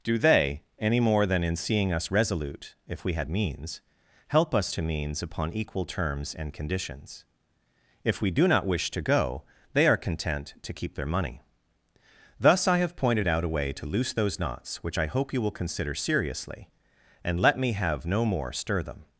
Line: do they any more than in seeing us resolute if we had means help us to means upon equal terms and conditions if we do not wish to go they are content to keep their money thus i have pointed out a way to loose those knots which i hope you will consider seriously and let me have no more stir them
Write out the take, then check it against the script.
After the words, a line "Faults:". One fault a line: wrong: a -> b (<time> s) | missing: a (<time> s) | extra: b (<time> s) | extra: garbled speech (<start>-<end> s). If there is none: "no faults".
do they any more than in seeing us resolute if we had means help us to means upon equal terms and conditions if we do not wish to go they are content to keep their money thus i have pointed out a way to loose those knots which i hope you will consider seriously and let me have no more stir them
Faults:
no faults